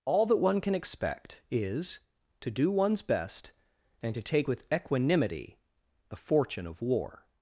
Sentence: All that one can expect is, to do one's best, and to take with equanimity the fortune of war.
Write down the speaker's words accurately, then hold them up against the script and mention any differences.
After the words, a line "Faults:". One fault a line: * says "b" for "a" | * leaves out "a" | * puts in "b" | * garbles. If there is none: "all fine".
All that one can expect is, to do one's best, and to take with equanimity the fortune of war.
Faults:
all fine